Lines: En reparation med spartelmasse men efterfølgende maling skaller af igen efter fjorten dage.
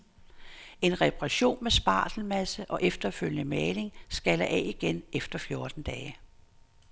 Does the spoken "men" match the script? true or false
false